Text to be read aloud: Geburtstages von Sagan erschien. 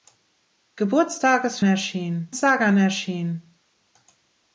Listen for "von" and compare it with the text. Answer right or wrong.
wrong